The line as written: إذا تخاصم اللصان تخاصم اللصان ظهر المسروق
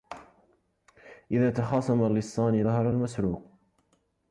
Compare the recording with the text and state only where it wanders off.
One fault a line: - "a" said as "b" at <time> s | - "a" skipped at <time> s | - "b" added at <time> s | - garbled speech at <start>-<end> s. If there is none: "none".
- "تخاصم اللصان" skipped at 2.7 s